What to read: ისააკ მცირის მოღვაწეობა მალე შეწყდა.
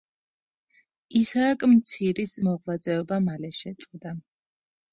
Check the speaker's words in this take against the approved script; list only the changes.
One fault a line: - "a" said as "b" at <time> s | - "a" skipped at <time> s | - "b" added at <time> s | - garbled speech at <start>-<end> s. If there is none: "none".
none